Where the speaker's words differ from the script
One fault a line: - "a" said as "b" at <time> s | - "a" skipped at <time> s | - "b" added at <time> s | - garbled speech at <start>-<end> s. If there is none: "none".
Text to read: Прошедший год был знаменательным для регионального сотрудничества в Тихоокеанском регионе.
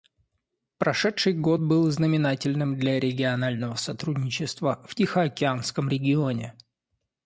none